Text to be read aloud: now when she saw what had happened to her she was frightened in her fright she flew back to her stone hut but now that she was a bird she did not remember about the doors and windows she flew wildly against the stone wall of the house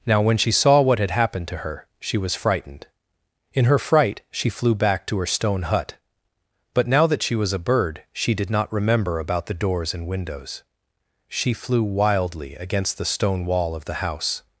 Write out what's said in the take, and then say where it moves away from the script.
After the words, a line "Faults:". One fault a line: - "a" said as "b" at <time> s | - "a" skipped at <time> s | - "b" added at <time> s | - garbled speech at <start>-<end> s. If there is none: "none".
now when she saw what had happened to her she was frightened in her fright she flew back to her stone hut but now that she was a bird she did not remember about the doors and windows she flew wildly against the stone wall of the house
Faults:
none